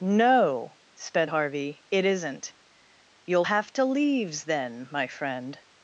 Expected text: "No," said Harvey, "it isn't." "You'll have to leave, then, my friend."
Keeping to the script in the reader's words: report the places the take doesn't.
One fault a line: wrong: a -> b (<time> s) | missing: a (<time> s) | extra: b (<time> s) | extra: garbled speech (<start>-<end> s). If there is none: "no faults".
wrong: said -> sped (0.9 s)
wrong: leave -> leaves (3.8 s)